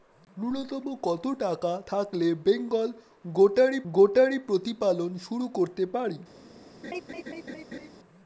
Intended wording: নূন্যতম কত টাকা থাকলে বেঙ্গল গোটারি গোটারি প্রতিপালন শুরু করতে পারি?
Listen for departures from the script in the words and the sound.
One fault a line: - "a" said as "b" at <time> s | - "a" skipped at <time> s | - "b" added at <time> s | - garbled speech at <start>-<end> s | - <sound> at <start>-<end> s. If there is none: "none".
- laugh at 6.8-7.9 s